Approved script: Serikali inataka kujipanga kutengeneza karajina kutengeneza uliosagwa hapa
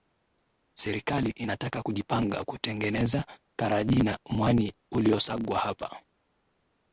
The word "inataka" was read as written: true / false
true